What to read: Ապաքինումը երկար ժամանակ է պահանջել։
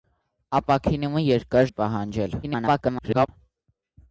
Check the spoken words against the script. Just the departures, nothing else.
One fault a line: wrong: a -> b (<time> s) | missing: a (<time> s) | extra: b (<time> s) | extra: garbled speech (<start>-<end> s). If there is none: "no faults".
missing: ժամանակ (1.7 s)
extra: garbled speech (2.4-3.3 s)